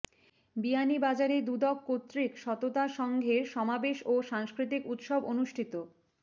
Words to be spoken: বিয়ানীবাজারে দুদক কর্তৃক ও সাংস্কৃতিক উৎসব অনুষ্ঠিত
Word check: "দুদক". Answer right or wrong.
right